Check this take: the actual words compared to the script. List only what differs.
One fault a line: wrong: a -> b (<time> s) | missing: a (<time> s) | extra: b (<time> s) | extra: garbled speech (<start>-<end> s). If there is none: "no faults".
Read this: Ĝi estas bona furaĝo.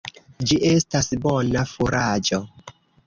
no faults